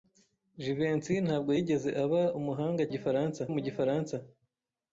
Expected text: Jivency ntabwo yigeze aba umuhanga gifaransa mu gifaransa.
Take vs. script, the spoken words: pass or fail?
pass